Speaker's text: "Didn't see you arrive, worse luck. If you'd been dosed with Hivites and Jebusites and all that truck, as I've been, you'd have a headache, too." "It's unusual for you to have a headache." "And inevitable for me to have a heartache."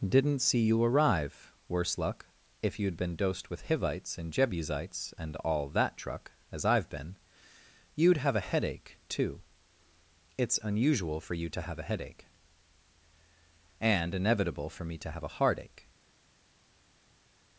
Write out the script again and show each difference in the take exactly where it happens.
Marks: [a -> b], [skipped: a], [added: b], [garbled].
"Didn't see you arrive, worse luck. If you'd been dosed with Hivites and Jebusites and all that truck, as I've been, you'd have a headache, too." "It's unusual for you to have a headache." "And inevitable for me to have a heartache."